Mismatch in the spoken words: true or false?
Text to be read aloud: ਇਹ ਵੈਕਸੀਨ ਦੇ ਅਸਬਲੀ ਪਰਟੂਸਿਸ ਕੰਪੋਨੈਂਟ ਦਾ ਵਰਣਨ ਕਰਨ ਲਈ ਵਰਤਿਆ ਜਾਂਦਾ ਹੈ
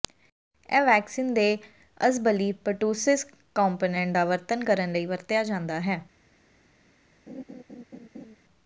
false